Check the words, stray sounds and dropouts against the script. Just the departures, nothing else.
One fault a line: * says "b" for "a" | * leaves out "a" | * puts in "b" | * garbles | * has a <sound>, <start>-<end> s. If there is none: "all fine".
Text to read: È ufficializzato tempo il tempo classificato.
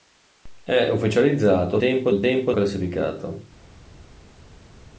all fine